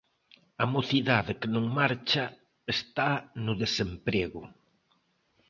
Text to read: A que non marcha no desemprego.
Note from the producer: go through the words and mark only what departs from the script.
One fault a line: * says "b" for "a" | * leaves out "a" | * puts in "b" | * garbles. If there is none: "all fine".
* puts in "mocidade"
* puts in "está"